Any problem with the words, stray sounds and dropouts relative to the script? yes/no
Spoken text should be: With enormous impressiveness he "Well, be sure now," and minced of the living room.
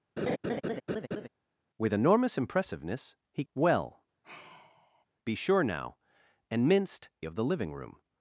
yes